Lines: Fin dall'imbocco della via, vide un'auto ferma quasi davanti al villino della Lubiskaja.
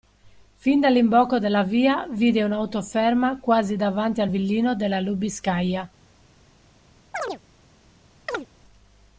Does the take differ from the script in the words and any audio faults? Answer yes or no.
yes